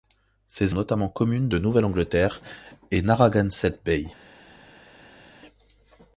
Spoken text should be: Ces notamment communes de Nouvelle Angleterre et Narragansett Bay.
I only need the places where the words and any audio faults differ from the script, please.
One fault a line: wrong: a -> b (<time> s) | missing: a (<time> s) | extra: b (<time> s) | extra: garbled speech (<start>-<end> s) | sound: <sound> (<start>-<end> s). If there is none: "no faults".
no faults